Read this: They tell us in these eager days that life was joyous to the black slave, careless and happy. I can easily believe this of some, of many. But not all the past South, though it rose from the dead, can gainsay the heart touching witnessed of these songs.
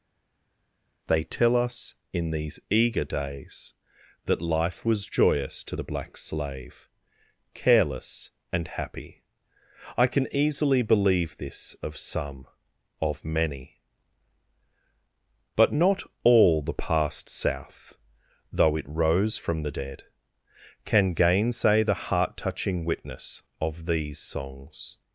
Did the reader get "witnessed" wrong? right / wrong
wrong